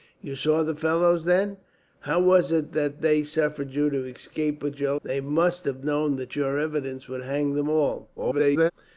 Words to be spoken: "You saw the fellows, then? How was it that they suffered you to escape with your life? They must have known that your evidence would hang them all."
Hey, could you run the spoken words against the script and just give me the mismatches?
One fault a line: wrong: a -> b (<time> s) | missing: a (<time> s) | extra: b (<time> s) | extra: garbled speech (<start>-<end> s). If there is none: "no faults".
missing: life (5.0 s)
extra: garbled speech (8.2-8.7 s)